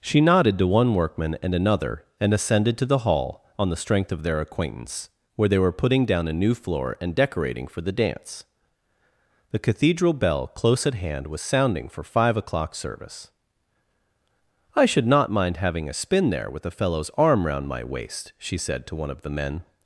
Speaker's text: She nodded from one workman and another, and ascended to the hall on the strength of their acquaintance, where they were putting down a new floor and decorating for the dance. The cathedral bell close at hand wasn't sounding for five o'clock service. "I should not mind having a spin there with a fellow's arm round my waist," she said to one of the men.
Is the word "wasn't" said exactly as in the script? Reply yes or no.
no